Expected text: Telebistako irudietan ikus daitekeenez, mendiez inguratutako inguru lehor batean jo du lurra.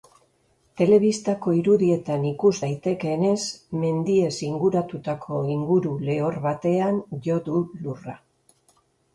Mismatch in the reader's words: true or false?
false